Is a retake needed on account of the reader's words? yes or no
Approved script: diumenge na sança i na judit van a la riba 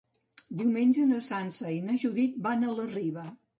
no